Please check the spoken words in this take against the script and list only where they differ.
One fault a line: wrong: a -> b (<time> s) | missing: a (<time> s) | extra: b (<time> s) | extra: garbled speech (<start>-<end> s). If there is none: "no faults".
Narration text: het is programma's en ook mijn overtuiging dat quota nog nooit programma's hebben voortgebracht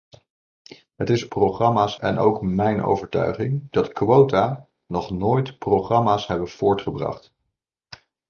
no faults